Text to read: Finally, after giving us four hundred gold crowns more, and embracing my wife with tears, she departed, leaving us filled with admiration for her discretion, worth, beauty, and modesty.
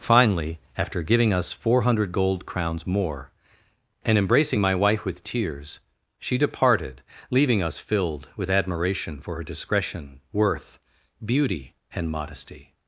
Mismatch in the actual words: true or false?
false